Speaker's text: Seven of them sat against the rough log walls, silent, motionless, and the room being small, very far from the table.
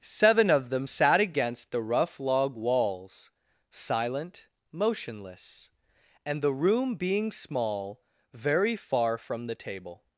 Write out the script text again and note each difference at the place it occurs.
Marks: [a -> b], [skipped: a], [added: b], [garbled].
Seven of them sat against the rough log walls, silent, motionless, and the room being small, very far from the table.